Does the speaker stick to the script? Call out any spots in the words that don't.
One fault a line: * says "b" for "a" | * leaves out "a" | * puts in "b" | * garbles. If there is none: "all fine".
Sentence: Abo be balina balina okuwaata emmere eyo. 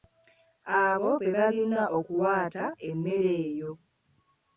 * leaves out "balina"